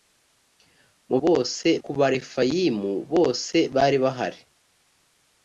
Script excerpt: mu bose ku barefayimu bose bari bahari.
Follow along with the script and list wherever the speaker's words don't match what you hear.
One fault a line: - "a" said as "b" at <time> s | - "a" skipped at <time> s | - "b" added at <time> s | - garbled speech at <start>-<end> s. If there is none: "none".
none